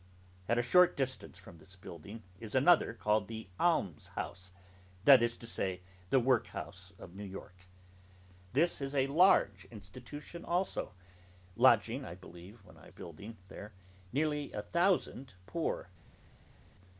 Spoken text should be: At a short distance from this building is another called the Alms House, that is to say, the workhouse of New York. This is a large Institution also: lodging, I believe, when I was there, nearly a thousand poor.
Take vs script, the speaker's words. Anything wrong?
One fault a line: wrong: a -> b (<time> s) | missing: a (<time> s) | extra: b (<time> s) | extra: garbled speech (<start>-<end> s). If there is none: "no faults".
wrong: was -> building (12.9 s)